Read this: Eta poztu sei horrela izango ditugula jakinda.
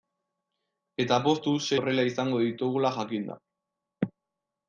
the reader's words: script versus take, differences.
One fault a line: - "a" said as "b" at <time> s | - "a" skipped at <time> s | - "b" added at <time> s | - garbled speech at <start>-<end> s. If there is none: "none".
none